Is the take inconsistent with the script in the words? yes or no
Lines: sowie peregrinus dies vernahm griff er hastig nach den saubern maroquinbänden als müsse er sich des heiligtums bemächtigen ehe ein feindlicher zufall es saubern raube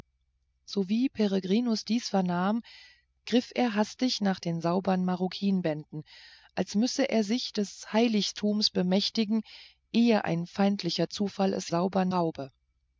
no